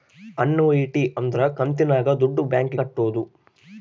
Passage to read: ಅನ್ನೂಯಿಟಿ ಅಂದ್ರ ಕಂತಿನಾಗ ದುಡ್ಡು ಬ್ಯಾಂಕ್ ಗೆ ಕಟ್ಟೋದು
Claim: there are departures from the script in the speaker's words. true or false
true